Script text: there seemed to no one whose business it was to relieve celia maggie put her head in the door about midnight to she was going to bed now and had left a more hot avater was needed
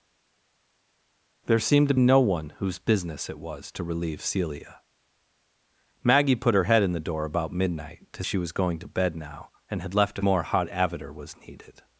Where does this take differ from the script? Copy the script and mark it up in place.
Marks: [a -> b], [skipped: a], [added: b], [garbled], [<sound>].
there seemed to no one whose business it was to relieve celia maggie put her head in the door about midnight to she was going to bed now and had left a more hot avater was needed